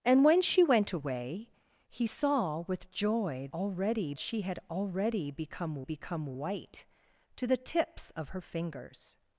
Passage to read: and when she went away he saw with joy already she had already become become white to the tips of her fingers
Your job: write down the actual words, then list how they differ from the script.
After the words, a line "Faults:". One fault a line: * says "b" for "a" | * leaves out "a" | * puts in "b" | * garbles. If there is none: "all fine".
and when she went away he saw with joy already she had already become become white to the tips of her fingers
Faults:
all fine